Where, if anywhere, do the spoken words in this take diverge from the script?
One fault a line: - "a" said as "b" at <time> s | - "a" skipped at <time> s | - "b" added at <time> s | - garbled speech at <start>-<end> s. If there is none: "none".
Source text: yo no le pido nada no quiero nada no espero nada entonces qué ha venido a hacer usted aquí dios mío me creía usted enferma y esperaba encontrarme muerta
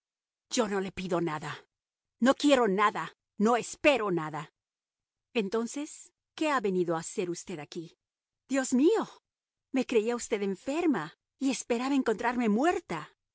none